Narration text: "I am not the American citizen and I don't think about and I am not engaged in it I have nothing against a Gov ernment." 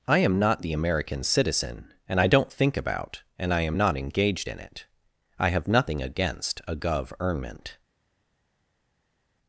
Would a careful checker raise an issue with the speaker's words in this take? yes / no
no